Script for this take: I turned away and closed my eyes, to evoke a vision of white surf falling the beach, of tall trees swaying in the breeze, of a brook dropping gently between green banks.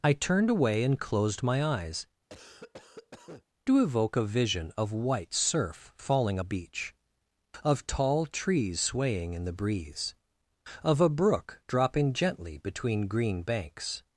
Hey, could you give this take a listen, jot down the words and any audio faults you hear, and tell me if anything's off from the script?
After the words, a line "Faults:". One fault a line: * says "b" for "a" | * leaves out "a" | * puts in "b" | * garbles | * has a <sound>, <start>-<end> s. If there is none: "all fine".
I turned away and closed my eyes, to evoke a vision of white surf falling the beach, of tall trees swaying in the breeze, of a brook dropping gently between green banks.
Faults:
* has a cough, 2.3-3.4 s